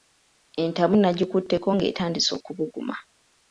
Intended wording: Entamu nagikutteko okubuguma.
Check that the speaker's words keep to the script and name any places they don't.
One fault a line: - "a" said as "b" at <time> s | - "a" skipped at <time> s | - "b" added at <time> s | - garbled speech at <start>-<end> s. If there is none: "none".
- "ng'etandise" added at 1.7 s